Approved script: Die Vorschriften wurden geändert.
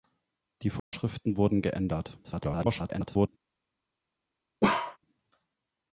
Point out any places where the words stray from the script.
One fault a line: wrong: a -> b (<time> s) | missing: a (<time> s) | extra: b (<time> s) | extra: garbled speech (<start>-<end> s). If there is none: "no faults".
extra: garbled speech (2.2-3.3 s)